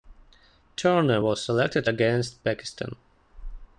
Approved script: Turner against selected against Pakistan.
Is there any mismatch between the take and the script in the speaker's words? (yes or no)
yes